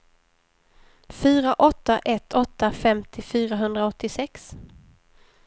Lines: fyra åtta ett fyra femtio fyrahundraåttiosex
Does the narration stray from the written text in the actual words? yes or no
yes